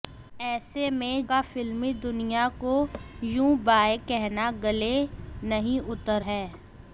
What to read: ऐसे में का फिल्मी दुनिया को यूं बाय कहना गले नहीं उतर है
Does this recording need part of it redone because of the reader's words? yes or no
no